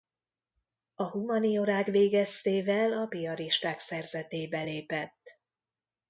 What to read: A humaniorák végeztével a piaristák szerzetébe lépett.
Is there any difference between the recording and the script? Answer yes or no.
no